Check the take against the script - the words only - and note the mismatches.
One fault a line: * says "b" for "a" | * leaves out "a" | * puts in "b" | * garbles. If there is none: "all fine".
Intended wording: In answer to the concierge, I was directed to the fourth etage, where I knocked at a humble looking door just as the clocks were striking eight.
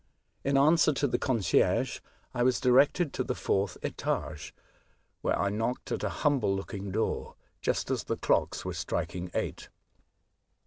all fine